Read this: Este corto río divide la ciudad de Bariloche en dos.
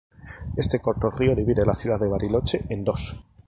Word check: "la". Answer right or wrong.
right